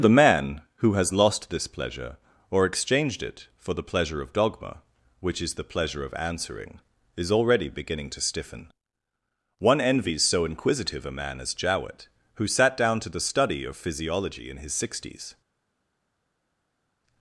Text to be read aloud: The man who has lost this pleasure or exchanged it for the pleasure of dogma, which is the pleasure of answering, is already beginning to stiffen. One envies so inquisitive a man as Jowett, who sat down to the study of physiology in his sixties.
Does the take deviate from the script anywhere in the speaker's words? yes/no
no